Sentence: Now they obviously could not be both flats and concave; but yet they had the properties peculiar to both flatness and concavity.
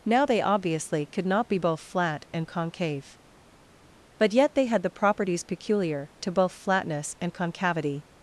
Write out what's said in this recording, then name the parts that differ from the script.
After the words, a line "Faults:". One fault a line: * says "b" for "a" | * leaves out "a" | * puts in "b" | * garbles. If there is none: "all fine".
Now they obviously could not be both flat and concave; but yet they had the properties peculiar to both flatness and concavity.
Faults:
* says "flat" for "flats"